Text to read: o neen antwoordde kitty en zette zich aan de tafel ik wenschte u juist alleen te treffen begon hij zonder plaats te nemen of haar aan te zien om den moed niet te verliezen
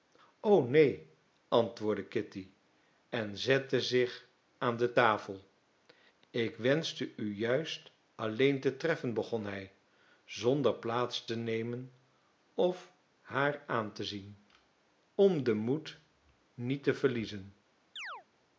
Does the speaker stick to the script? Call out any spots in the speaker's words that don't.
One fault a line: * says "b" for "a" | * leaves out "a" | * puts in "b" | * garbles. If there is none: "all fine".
all fine